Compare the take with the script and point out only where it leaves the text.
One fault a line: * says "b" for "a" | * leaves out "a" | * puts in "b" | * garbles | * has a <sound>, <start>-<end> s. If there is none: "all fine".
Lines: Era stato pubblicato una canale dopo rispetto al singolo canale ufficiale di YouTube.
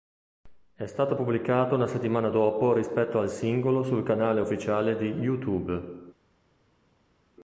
* says "È" for "Era"
* says "settimana" for "canale"
* puts in "sul"